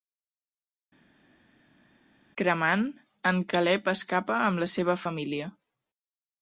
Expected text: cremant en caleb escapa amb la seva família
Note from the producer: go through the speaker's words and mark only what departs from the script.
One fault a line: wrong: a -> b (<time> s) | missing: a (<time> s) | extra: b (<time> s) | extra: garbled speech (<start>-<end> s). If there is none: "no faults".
no faults